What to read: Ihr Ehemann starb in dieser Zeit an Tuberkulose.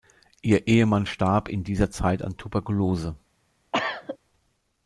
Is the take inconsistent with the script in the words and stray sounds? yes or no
yes